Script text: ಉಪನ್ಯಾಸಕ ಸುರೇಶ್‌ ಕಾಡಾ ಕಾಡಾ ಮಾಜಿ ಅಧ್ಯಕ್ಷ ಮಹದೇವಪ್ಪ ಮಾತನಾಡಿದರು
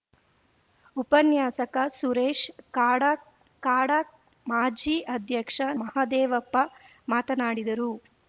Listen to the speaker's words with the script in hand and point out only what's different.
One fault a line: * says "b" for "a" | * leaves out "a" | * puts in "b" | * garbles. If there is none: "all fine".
all fine